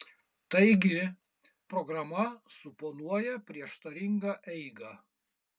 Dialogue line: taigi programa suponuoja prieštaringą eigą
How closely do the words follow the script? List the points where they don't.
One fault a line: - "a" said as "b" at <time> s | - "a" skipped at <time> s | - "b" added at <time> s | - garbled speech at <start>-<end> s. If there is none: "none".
none